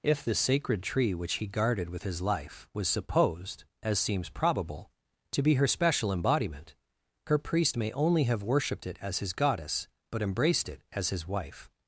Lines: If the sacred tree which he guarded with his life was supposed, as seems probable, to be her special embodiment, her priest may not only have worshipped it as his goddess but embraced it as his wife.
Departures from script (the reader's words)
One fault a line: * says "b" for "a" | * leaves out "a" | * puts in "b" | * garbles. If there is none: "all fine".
* leaves out "not"